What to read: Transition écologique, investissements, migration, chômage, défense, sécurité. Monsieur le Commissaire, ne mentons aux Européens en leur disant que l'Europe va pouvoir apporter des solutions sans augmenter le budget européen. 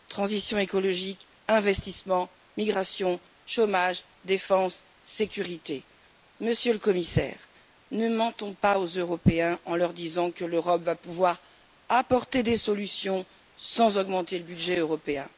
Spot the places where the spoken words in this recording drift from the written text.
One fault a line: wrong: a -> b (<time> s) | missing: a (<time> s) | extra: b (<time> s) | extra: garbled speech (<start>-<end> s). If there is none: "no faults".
extra: pas (8.6 s)